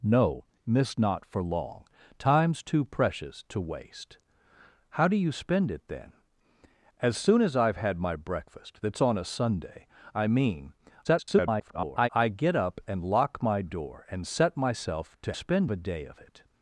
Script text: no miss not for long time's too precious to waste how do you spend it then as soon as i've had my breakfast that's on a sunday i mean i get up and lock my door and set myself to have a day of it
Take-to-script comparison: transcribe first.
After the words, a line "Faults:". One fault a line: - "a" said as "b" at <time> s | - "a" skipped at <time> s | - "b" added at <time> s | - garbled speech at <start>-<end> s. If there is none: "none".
no miss not for long time's too precious to waste how do you spend it then as soon as i've had my breakfast that's on a sunday i mean [garbled] i get up and lock my door and set myself to spend a day of it
Faults:
- garbled speech at 11.0-12.1 s
- "have" said as "spend" at 15.3 s